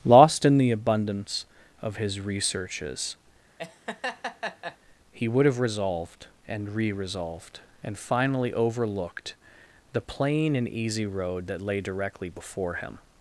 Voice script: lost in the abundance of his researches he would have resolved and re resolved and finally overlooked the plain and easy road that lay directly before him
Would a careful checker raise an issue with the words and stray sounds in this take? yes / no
yes